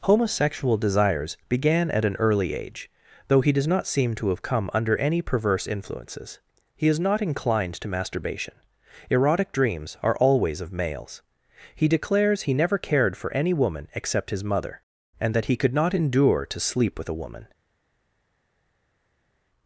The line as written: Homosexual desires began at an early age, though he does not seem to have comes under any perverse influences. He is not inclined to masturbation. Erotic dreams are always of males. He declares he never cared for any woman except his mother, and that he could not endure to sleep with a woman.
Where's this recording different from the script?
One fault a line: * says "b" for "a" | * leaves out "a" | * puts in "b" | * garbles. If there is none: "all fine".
* says "come" for "comes"